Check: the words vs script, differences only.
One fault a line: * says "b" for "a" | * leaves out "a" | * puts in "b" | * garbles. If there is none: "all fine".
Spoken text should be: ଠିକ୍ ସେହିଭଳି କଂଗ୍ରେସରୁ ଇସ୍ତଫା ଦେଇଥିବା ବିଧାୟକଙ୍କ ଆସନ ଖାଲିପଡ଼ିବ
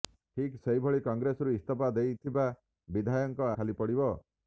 * leaves out "ଆସନ"